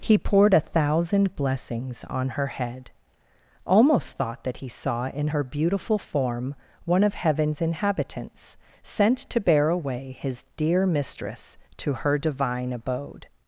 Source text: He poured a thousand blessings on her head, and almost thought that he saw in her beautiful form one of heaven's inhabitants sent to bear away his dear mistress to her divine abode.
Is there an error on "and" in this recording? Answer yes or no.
yes